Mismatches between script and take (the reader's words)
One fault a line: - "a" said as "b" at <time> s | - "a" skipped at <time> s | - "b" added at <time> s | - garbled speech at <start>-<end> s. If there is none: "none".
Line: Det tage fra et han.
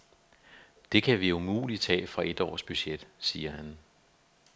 - "kan vi umuligt" added at 1.0 s
- "års budget siger" added at 2.4 s